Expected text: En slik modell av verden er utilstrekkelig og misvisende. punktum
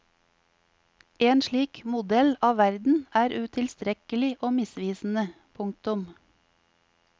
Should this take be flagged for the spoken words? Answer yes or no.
no